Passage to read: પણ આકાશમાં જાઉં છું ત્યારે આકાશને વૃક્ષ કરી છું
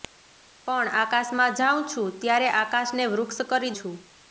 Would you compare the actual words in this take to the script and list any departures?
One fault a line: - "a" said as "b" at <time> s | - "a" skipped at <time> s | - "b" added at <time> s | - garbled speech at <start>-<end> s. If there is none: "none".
none